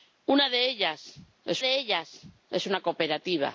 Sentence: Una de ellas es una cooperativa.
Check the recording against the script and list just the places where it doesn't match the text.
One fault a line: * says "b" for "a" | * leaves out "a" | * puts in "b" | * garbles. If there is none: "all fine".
* puts in "de ellas es"